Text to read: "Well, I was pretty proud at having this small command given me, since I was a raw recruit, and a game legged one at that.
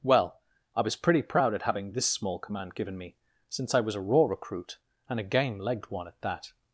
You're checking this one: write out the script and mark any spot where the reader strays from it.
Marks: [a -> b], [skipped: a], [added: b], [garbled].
"Well, I was pretty proud at having this small command given me, since I was a raw recruit, and a game legged one at that.